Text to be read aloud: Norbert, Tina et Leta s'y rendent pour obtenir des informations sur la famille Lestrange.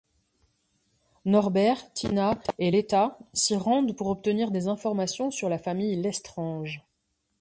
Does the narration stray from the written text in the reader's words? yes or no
no